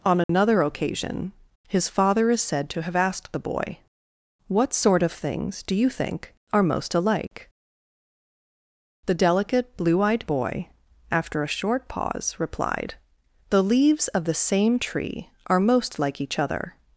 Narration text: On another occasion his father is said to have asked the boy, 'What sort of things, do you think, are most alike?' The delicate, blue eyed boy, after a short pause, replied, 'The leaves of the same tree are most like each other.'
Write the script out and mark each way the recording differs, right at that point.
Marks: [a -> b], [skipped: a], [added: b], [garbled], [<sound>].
On another [dropout] occasion his father is said to have asked the boy, 'What sort of things, do you think, are most alike?' The delicate, blue eyed boy, after a short pause, replied, 'The leaves of the same tree are most like each other.'